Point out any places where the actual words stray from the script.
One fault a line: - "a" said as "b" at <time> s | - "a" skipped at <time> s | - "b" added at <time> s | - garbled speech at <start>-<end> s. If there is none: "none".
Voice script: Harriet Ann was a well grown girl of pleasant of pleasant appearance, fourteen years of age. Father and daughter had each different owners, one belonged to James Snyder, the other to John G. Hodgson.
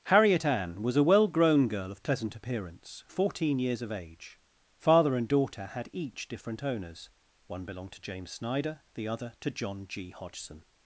- "of pleasant" skipped at 2.4 s